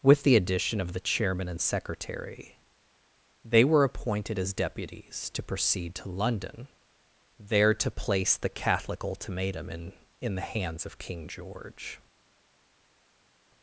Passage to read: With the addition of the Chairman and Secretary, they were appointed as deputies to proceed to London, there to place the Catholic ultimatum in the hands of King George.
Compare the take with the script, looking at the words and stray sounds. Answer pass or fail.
fail